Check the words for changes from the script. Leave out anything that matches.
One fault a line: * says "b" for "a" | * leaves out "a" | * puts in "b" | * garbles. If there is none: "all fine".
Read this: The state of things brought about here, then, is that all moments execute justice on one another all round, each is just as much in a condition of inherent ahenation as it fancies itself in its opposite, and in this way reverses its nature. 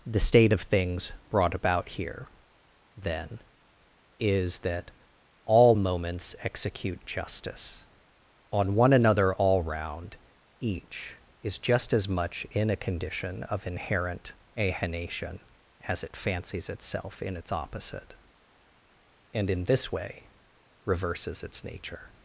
all fine